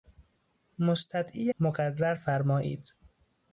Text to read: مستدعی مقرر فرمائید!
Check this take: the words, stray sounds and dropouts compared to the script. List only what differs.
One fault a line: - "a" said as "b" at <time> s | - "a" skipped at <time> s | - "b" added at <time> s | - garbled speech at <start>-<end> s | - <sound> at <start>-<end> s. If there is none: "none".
none